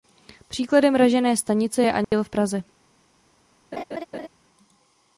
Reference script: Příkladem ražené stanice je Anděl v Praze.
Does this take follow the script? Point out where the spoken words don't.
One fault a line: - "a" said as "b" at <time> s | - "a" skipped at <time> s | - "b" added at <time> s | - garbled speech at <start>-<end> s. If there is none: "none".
none